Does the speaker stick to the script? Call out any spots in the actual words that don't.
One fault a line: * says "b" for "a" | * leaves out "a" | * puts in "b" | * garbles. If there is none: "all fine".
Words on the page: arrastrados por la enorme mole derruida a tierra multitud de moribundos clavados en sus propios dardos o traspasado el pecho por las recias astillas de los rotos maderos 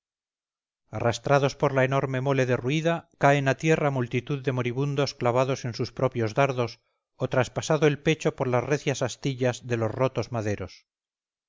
* puts in "caen"